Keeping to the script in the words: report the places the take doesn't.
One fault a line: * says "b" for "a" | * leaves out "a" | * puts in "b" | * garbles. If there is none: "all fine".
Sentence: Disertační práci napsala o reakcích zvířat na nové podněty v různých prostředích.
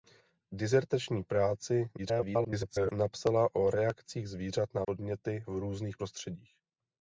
* garbles
* leaves out "nové"